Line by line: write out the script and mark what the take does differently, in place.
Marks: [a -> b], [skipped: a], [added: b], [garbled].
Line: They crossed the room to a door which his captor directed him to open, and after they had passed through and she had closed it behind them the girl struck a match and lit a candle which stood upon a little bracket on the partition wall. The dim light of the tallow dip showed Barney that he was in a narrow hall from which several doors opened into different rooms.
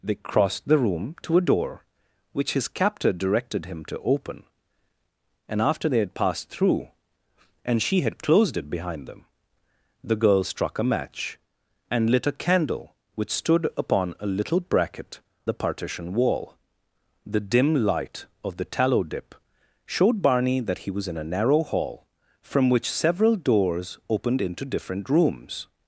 They crossed the room to a door which his captor directed him to open, and after they had passed through and she had closed it behind them the girl struck a match and lit a candle which stood upon a little bracket [skipped: on] the partition wall. The dim light of the tallow dip showed Barney that he was in a narrow hall from which several doors opened into different rooms.